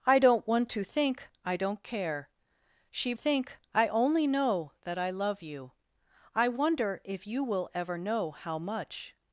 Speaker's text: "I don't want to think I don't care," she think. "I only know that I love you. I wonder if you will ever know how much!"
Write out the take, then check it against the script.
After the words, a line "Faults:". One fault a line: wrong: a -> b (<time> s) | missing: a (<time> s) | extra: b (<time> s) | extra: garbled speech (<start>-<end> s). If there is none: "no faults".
"I don't want to think I don't care," she think. "I only know that I love you. I wonder if you will ever know how much!"
Faults:
no faults